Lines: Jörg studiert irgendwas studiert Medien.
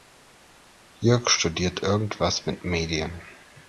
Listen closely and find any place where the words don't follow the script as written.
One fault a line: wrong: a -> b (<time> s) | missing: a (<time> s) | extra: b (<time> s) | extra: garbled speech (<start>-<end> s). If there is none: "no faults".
wrong: studiert -> mit (2.5 s)